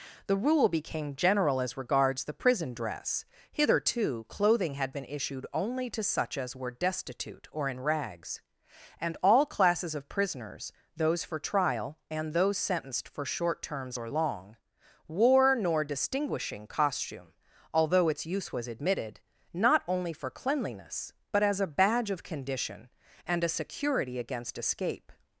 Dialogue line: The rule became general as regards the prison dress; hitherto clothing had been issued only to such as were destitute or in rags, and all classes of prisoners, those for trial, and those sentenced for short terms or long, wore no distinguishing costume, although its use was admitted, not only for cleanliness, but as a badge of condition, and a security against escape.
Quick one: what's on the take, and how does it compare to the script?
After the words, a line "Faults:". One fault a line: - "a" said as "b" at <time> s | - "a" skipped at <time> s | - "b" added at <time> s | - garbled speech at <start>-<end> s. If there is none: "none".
The rule became general as regards the prison dress; hitherto clothing had been issued only to such as were destitute or in rags, and all classes of prisoners, those for trial, and those sentenced for short terms or long, wore nor distinguishing costume, although its use was admitted, not only for cleanliness, but as a badge of condition, and a security against escape.
Faults:
- "no" said as "nor" at 15.6 s